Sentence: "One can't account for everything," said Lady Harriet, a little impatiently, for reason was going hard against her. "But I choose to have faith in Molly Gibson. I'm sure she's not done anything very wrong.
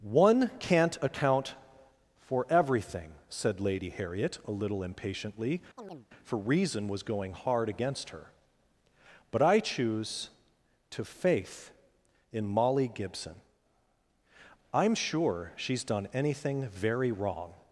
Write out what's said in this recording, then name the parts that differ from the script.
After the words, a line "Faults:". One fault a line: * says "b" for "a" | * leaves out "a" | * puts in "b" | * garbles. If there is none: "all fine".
"One can't account for everything," said Lady Harriet, a little impatiently, for reason was going hard against her. "But I choose to faith in Molly Gibson. I'm sure she's done anything very wrong.
Faults:
* leaves out "have"
* leaves out "not"